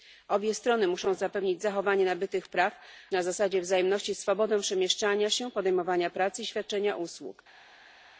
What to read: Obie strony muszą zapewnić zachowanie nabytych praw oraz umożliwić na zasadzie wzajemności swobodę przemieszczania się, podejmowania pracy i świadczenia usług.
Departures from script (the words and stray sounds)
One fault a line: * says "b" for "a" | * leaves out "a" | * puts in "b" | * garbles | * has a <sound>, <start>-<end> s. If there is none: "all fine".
* leaves out "oraz umożliwić"